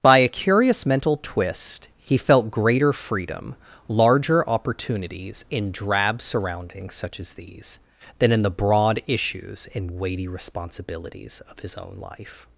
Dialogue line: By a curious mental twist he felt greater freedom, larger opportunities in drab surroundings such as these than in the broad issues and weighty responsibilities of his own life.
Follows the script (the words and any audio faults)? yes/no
yes